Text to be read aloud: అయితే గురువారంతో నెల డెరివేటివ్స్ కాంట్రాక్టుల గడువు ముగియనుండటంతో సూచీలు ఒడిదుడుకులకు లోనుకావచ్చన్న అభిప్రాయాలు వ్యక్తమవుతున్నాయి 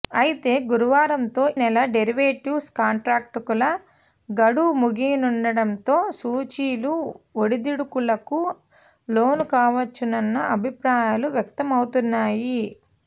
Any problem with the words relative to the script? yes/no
no